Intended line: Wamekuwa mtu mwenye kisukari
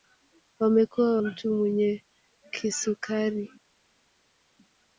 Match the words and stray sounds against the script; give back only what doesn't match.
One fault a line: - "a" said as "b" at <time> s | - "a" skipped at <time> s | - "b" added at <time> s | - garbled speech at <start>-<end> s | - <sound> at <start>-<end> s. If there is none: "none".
none